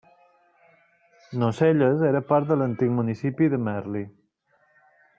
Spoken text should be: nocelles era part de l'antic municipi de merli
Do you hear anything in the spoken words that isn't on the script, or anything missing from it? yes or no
no